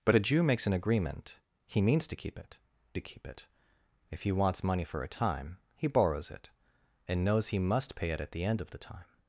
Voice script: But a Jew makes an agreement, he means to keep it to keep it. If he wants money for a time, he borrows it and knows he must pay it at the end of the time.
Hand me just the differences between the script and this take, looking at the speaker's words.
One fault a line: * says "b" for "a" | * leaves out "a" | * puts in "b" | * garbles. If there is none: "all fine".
all fine